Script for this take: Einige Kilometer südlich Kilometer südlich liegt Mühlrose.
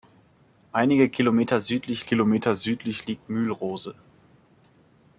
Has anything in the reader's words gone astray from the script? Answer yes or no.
no